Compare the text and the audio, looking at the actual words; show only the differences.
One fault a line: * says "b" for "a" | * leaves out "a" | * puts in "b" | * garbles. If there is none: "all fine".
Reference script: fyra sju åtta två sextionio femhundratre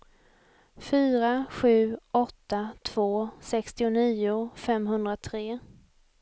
all fine